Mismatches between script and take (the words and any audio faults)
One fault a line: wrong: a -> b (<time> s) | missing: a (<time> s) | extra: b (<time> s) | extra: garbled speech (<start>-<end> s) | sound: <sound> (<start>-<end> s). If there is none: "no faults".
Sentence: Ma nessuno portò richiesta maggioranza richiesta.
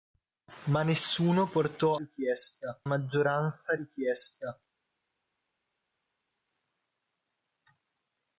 no faults